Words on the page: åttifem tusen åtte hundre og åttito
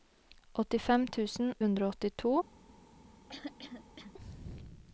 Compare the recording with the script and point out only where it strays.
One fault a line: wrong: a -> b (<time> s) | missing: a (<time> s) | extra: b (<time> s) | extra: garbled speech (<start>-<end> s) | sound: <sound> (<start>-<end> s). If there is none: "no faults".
missing: åtte (1.5 s)
sound: throat clearing (3.3-4.1 s)